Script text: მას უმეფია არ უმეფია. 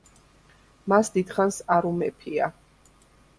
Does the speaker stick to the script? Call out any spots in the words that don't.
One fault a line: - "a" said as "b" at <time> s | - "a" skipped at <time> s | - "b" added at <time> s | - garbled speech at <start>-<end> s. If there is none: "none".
- "უმეფია" said as "დიდხანს" at 1.1 s